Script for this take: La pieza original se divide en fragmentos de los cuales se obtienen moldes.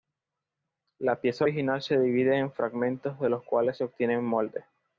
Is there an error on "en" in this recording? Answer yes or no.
no